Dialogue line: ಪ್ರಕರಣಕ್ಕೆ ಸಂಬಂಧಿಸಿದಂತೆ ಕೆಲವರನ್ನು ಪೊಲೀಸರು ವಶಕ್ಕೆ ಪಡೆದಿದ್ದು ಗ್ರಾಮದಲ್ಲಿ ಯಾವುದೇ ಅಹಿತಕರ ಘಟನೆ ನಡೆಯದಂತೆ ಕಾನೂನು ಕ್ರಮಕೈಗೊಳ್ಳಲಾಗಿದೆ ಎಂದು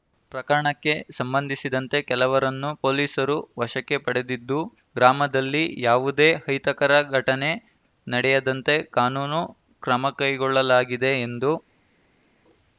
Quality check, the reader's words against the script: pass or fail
pass